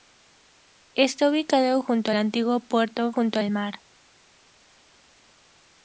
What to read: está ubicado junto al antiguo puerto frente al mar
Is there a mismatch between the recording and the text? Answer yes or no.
yes